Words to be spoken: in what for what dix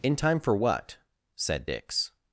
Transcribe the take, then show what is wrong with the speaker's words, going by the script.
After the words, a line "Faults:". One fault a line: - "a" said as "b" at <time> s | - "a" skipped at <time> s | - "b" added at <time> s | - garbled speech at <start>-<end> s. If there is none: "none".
in time for what said dix
Faults:
- "what" said as "time" at 0.1 s
- "said" added at 1.4 s